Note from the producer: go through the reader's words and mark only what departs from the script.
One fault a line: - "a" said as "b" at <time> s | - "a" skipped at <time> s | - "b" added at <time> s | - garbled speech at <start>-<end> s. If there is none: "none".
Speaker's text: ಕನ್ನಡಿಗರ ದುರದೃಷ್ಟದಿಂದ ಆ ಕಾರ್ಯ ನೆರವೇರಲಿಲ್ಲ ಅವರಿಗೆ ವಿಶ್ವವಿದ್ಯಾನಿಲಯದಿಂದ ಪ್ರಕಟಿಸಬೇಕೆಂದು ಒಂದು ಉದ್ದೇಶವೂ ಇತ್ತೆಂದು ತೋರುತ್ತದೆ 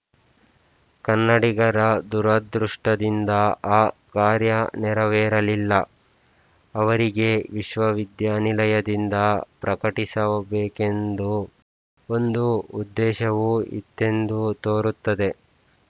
none